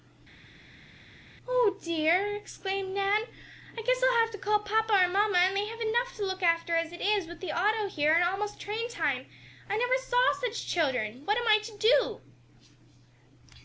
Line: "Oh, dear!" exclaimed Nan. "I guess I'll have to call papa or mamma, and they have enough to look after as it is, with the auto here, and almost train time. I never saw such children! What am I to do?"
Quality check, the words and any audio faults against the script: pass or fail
pass